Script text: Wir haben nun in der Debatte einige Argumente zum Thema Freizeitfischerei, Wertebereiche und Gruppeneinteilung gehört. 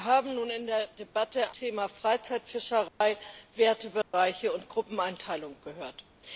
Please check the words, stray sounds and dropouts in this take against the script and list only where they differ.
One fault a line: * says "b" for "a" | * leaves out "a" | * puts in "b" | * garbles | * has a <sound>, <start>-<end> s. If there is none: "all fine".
* leaves out "einige Argumente zum"
* has a dropout, 2.9-3.0 s
* has a dropout, 4.0-4.1 s